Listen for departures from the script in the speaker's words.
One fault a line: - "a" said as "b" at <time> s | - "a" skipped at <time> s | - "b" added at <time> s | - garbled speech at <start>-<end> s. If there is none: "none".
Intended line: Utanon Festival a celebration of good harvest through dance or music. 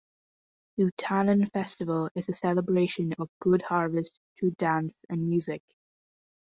- "is" added at 2.2 s
- "or" said as "and" at 5.1 s